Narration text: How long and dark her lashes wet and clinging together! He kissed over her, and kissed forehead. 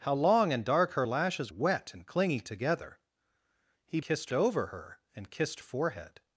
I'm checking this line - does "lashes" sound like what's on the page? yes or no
yes